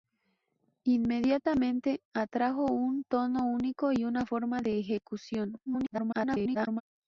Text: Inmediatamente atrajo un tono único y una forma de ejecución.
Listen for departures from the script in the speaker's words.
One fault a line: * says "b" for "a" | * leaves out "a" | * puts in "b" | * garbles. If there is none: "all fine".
* garbles